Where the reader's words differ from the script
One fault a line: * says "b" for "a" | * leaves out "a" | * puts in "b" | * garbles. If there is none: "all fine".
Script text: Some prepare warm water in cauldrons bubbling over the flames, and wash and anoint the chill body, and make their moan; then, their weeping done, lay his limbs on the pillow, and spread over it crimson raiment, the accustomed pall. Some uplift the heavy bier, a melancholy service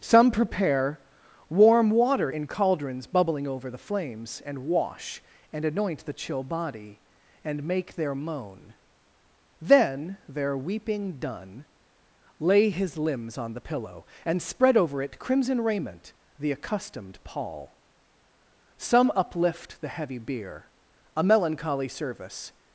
all fine